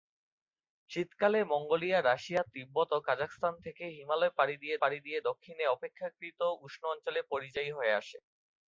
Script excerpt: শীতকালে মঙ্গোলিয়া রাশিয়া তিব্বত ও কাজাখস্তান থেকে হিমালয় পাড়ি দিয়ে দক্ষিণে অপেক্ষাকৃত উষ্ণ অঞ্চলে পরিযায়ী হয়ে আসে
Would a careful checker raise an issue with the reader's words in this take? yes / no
yes